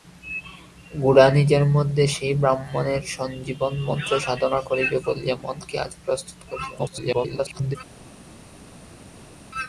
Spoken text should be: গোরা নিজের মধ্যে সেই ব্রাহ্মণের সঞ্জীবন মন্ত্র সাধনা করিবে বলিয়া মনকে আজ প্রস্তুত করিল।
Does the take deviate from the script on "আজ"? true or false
false